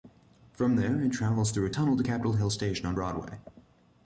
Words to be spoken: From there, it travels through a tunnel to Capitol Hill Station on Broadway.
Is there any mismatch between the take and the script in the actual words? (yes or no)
no